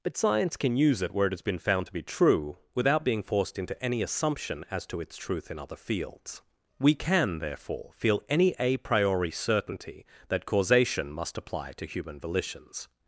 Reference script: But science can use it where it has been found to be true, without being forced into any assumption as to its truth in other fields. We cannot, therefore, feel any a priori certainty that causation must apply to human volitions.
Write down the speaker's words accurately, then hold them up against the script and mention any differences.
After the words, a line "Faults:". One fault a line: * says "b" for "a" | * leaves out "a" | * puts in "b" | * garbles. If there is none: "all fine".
But science can use it where it has been found to be true, without being forced into any assumption as to its truth in other fields. We can, therefore, feel any a priori certainty that causation must apply to human volitions.
Faults:
* says "can" for "cannot"